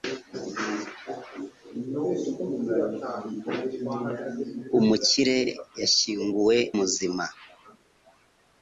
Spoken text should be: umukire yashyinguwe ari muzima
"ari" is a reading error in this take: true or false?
true